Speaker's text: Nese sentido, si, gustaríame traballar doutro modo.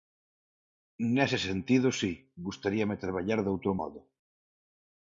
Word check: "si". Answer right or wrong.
right